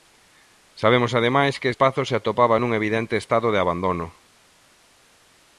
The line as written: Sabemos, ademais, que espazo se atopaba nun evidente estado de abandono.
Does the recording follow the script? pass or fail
pass